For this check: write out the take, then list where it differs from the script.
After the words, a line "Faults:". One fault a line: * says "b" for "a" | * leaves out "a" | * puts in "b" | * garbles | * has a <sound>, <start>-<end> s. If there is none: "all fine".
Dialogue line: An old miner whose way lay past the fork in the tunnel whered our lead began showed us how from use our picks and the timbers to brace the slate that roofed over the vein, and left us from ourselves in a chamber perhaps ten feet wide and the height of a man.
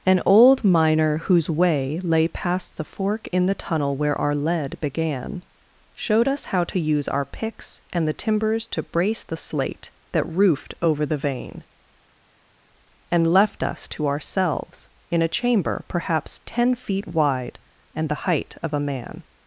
An old miner whose way lay past the fork in the tunnel where our lead began showed us how to use our picks and the timbers to brace the slate that roofed over the vein, and left us to ourselves in a chamber perhaps ten feet wide and the height of a man.
Faults:
* says "where" for "whered"
* says "to" for "from"
* says "to" for "from"